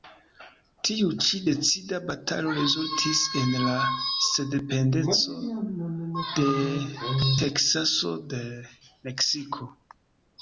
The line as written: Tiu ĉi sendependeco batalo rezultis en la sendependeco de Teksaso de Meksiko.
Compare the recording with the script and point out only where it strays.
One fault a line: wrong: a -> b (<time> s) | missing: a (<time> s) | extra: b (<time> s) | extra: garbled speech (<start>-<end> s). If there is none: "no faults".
wrong: sendependeco -> decida (1.5 s)